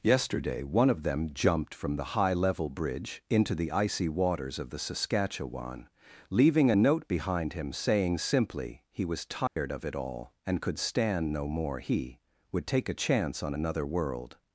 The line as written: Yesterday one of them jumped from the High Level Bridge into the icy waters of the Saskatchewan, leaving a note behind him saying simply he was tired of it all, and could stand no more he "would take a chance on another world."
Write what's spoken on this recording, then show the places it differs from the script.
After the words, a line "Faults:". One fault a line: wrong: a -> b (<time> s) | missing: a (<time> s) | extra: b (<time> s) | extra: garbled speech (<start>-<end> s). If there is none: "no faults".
Yesterday one of them jumped from the High Level Bridge into the icy waters of the Saskatchewan, leaving a note behind him saying simply he was tired of it all, and could stand no more he "would take a chance on another world."
Faults:
no faults